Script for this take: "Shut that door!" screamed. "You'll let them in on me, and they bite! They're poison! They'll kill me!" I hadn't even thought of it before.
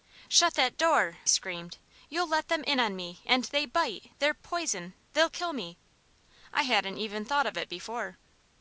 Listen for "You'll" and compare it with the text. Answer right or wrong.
right